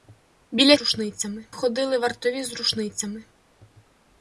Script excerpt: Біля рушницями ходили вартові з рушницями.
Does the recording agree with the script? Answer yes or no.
yes